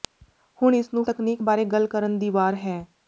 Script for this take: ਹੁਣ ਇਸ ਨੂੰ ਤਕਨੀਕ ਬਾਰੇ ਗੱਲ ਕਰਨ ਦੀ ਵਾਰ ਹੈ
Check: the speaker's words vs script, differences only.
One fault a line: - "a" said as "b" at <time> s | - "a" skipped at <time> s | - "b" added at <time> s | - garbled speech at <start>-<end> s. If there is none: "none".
none